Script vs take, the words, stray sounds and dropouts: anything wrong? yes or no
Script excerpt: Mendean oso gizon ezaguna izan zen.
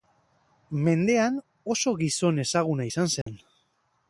yes